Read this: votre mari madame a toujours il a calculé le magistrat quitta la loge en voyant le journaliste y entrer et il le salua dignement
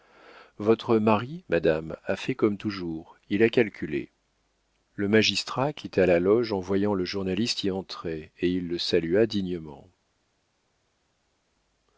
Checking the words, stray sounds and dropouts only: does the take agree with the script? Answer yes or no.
no